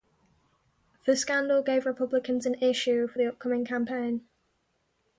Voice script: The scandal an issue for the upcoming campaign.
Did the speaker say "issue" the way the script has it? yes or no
yes